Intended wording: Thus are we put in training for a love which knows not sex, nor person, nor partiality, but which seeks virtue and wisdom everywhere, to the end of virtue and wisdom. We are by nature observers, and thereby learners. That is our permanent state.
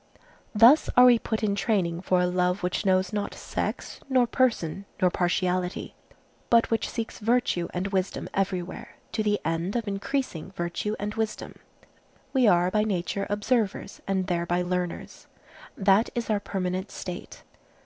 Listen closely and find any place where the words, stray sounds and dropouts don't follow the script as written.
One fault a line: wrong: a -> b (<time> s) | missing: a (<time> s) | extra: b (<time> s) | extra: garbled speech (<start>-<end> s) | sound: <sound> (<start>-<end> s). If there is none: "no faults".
extra: increasing (9.9 s)